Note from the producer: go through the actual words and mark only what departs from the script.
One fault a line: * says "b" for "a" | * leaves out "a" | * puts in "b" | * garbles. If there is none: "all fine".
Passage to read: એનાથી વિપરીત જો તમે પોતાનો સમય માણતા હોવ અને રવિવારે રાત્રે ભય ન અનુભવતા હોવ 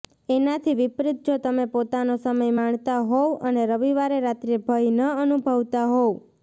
all fine